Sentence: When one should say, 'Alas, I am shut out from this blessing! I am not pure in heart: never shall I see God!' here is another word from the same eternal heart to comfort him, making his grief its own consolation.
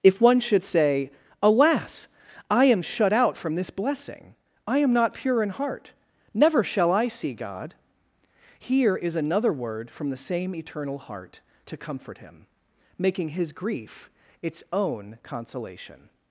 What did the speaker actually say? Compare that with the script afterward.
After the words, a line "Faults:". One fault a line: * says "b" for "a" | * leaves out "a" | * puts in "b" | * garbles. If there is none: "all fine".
If one should say, 'Alas, I am shut out from this blessing! I am not pure in heart: never shall I see God!' here is another word from the same eternal heart to comfort him, making his grief its own consolation.
Faults:
* says "If" for "When"